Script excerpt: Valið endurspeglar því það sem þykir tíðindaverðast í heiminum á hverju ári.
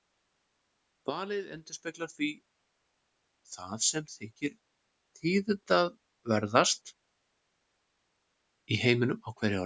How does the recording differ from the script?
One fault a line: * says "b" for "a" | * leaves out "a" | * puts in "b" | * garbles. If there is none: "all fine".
all fine